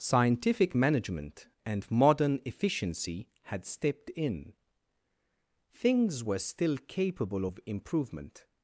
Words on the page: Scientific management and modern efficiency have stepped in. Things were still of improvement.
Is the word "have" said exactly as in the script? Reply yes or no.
no